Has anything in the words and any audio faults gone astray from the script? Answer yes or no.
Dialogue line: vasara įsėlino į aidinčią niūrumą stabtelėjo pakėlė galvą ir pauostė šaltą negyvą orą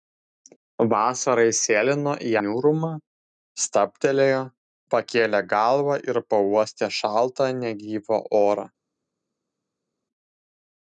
yes